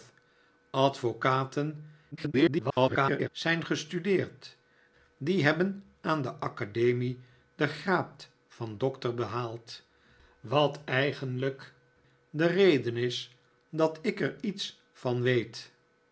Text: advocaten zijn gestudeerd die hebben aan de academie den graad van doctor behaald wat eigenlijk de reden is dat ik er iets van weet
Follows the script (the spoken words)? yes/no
no